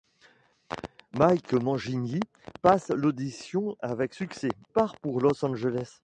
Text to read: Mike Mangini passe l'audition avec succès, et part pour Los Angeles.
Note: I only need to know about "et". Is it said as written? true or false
false